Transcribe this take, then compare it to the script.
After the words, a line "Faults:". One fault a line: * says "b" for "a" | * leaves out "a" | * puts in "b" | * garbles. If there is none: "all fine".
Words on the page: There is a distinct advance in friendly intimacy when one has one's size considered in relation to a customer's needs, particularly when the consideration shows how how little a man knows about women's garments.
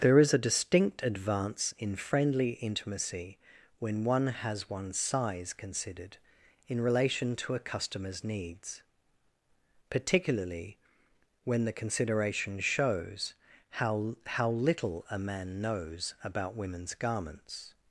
There is a distinct advance in friendly intimacy when one has one's size considered in relation to a customer's needs, particularly when the consideration shows how how little a man knows about women's garments.
Faults:
all fine